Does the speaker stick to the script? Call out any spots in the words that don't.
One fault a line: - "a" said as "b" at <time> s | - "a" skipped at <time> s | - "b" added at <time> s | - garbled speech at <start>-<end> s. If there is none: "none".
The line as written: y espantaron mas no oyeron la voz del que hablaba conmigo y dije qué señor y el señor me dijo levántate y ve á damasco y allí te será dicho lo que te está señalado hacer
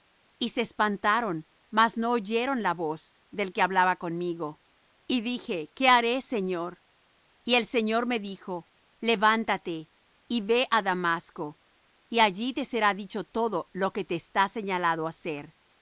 - "se" added at 0.5 s
- "haré" added at 5.9 s
- "todo" added at 13.2 s